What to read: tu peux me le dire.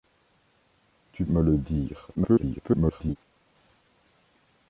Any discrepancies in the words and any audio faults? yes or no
yes